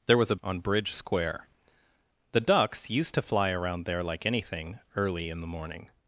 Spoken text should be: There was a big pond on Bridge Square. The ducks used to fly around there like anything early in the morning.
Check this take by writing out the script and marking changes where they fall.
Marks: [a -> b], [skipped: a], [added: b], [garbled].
There was a [skipped: big pond] on Bridge Square. The ducks used to fly around there like anything early in the morning.